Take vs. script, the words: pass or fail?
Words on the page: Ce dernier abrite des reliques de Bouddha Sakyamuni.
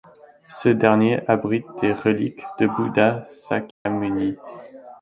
pass